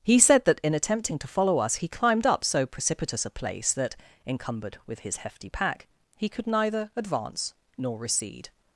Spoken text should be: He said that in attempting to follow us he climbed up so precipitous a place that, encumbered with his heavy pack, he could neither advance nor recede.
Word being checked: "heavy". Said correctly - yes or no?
no